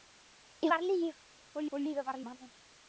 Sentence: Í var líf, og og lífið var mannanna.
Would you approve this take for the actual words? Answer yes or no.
yes